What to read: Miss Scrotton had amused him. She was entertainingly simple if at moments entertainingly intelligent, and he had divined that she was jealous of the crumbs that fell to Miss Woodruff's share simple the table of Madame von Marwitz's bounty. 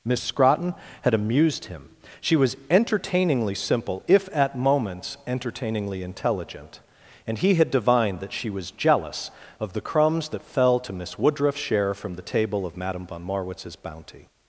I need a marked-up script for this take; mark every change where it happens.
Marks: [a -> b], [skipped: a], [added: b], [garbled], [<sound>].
Miss Scrotton had amused him. She was entertainingly simple if at moments entertainingly intelligent, and he had divined that she was jealous of the crumbs that fell to Miss Woodruff's share [simple -> from] the table of Madame von Marwitz's bounty.